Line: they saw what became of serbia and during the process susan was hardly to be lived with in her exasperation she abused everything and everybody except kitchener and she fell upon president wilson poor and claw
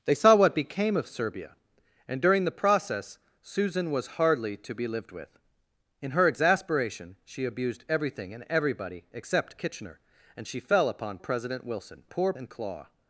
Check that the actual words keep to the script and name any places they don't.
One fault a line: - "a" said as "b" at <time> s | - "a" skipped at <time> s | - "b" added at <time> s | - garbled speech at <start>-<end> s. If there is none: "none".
none